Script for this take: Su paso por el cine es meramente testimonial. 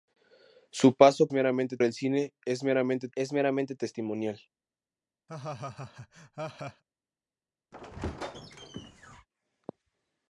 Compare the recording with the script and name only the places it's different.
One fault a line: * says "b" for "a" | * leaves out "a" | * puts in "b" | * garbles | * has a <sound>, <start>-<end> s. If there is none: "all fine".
* says "meramente" for "por"
* puts in "es meramente"
* has a laugh, 5.3-6.8 s
* has a squeak, 7.7-9.3 s